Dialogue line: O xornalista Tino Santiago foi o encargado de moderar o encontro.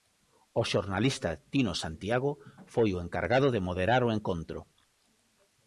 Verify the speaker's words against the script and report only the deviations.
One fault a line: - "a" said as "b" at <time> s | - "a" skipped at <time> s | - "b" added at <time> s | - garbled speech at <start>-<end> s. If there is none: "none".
none